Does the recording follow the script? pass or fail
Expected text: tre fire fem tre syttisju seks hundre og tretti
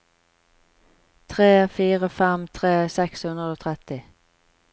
fail